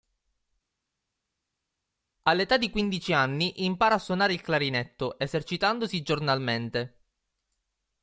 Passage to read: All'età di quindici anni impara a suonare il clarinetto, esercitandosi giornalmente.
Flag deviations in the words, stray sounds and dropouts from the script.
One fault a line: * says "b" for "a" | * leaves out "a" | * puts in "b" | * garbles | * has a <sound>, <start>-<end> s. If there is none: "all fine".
all fine